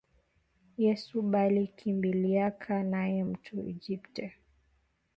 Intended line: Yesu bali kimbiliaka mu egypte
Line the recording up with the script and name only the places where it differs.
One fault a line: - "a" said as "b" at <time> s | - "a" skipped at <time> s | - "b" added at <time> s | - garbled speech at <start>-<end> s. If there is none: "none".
- "naye" added at 2.9 s